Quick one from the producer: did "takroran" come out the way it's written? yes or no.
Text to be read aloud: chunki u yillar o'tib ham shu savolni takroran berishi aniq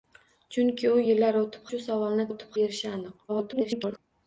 no